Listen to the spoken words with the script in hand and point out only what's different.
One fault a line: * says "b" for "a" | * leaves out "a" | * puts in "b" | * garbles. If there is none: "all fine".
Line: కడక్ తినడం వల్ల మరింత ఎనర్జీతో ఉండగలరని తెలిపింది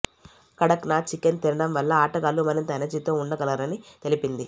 * puts in "నాథ్ చికెన్"
* puts in "ఆటగాళ్లు"